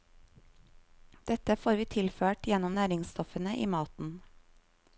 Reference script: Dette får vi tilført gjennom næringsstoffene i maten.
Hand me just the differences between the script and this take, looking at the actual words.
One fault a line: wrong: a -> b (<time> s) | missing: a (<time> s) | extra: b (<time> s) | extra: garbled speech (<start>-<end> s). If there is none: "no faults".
no faults